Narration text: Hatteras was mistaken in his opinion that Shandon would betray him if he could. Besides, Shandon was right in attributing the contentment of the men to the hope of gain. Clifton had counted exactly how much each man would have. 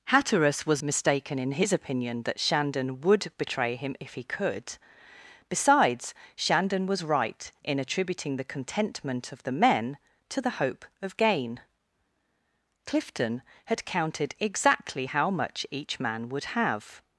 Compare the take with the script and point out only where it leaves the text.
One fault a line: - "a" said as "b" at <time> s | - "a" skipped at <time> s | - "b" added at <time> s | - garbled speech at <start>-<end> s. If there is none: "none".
none